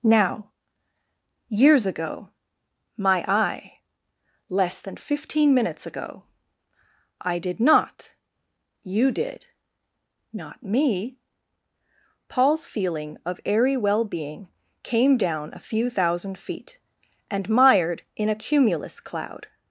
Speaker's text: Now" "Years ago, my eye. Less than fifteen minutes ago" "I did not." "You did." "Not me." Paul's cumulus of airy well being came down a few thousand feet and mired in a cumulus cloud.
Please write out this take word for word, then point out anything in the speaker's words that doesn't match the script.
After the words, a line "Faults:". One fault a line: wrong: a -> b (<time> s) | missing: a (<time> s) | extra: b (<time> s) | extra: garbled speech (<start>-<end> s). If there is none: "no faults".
Now" "Years ago, my eye. Less than fifteen minutes ago" "I did not." "You did." "Not me." Paul's feeling of airy well being came down a few thousand feet and mired in a cumulus cloud.
Faults:
wrong: cumulus -> feeling (12.7 s)